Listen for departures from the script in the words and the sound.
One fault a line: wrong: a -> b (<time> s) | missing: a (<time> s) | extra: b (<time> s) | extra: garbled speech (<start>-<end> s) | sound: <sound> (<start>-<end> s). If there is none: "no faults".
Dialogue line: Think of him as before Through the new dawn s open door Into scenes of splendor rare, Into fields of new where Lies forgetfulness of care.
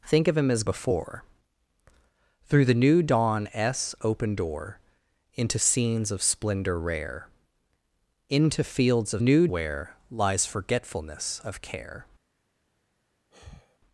sound: sigh (13.3-13.8 s)